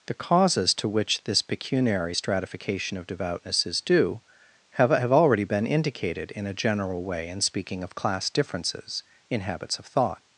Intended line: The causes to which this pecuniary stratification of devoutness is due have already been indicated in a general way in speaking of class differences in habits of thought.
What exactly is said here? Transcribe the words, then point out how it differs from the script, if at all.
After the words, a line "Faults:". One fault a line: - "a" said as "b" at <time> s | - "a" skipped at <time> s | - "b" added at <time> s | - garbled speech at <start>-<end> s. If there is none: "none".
The causes to which this pecuniary stratification of devoutness is due have have already been indicated in a general way in speaking of class differences in habits of thought.
Faults:
- "have" added at 4.9 s